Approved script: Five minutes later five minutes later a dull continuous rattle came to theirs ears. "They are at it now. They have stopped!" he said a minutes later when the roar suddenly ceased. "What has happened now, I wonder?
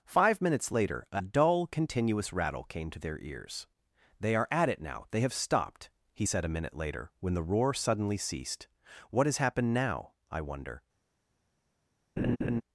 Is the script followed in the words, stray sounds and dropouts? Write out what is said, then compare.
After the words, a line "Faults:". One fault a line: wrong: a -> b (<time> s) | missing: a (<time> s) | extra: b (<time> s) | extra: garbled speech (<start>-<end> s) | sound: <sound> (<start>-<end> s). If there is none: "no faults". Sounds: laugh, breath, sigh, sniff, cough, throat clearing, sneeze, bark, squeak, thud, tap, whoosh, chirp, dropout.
Five minutes later a dull continuous rattle came to their ears. "They are at it now. They have stopped!" he said a minute later when the roar suddenly ceased. "What has happened now, I wonder?
Faults:
missing: five minutes later (1.1 s)
wrong: theirs -> their (3.0 s)
wrong: minutes -> minute (6.5 s)
sound: laugh (12.2-12.6 s)